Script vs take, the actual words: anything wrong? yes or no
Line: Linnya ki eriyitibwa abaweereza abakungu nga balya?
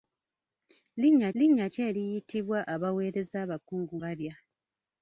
yes